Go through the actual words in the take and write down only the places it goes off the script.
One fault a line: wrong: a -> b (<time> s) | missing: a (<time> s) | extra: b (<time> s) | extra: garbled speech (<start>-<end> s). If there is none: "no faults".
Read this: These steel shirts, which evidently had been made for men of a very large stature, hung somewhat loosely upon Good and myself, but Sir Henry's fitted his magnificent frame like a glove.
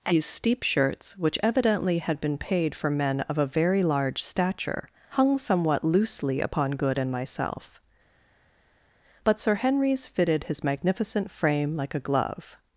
wrong: steel -> steep (0.2 s)
wrong: made -> paid (2.4 s)